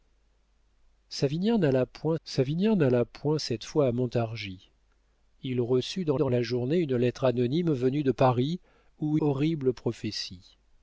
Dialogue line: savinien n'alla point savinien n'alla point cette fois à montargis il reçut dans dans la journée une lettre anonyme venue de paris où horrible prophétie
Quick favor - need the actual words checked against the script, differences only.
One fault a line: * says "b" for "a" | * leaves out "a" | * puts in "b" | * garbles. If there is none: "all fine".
all fine